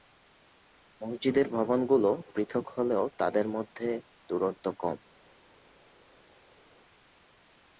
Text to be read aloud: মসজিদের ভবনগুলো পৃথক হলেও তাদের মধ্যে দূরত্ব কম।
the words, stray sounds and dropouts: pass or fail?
pass